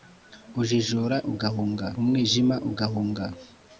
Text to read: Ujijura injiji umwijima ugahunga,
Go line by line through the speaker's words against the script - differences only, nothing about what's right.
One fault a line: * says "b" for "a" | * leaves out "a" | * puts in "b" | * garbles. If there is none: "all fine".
* says "ugahunga" for "injiji"